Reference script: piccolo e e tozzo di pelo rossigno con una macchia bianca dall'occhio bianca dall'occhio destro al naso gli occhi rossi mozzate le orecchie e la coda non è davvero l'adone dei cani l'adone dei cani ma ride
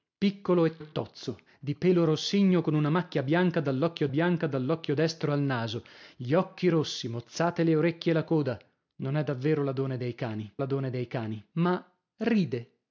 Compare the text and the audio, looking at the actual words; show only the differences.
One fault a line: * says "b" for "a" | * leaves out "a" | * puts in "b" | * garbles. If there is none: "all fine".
all fine